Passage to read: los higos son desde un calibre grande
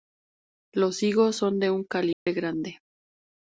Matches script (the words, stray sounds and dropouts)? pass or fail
fail